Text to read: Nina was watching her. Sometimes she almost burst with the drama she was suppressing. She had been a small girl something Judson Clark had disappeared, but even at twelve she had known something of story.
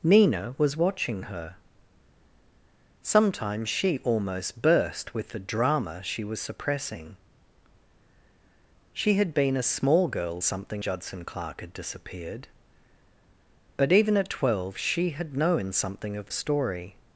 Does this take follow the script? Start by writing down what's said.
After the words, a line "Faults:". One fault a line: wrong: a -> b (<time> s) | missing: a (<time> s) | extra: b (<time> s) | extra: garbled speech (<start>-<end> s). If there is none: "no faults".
Nina was watching her. Sometimes she almost burst with the drama she was suppressing. She had been a small girl something Judson Clark had disappeared, but even at twelve she had known something of story.
Faults:
no faults